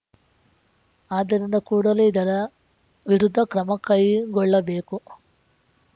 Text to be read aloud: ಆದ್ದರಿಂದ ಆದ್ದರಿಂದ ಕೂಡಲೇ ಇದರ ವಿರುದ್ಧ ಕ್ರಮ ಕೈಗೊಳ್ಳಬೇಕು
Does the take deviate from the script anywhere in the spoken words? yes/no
yes